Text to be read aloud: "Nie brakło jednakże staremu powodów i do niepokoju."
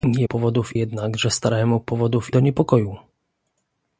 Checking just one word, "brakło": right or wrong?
wrong